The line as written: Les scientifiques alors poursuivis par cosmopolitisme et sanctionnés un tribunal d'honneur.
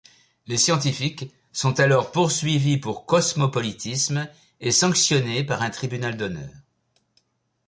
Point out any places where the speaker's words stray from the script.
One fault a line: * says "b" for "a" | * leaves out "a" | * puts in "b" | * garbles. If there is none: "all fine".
* puts in "sont"
* says "pour" for "par"
* puts in "par"